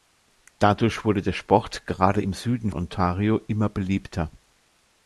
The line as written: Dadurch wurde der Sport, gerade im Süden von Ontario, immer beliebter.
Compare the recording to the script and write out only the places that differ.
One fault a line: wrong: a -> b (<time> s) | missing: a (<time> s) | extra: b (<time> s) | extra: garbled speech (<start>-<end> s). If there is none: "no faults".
missing: von (2.7 s)